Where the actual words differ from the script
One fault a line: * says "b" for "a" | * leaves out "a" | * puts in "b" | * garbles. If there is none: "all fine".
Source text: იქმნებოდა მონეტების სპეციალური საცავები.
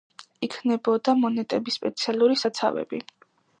all fine